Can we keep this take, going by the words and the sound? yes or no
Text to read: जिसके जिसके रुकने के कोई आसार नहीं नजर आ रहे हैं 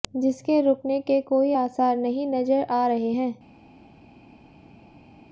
no